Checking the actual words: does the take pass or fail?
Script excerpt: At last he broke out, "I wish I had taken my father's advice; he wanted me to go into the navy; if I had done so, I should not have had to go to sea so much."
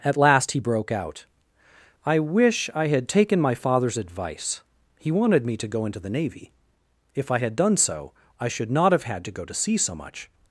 pass